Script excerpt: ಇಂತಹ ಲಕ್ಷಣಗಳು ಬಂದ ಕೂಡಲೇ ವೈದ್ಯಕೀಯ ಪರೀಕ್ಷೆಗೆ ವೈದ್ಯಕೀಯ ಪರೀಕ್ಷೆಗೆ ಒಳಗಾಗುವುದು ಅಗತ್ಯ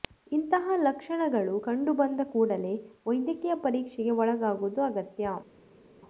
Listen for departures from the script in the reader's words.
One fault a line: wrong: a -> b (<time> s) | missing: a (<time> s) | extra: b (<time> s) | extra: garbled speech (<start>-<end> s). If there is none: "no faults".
extra: ಕಂಡು (1.6 s)
missing: ವೈದ್ಯಕೀಯ ಪರೀಕ್ಷೆಗೆ (4.1 s)